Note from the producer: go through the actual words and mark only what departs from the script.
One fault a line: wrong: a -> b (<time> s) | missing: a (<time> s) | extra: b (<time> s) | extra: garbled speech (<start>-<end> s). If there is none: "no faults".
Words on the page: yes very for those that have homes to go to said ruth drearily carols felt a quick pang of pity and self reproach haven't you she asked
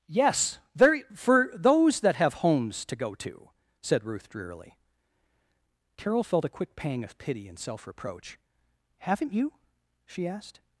wrong: carols -> carol (6.0 s)